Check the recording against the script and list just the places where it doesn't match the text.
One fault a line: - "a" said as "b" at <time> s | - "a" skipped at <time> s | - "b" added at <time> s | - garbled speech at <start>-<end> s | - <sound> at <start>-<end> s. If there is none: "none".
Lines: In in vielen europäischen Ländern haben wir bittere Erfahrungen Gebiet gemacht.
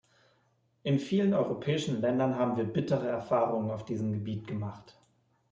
- "in" skipped at 1.0 s
- "auf diesem" added at 3.7 s